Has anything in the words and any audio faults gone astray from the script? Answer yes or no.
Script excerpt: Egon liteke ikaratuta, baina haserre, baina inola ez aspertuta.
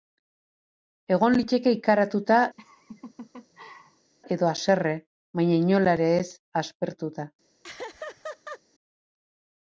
yes